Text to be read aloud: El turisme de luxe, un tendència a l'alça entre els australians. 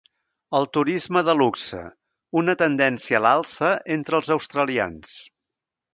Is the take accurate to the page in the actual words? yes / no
no